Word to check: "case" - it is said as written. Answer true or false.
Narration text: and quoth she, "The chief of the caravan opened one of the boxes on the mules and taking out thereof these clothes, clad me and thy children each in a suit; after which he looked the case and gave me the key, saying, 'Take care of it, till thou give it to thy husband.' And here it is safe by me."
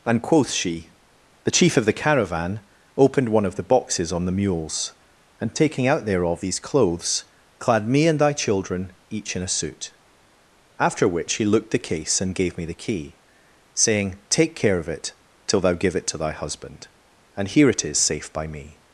true